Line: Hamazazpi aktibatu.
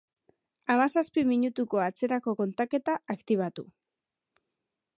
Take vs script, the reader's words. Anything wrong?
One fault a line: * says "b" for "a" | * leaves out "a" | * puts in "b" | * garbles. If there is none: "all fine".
* puts in "minutuko atzerako kontaketa"